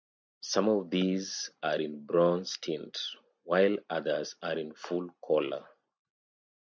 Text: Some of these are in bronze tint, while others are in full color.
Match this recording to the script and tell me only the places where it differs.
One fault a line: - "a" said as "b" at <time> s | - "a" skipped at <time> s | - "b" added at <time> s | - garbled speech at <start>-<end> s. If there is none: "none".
none